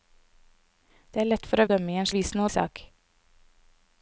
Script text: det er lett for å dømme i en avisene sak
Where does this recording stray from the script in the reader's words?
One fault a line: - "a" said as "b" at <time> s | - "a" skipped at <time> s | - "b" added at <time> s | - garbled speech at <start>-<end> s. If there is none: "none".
none